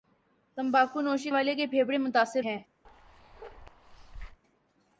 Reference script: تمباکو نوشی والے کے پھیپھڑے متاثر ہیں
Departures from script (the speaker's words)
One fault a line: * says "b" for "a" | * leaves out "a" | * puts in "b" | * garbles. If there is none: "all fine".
all fine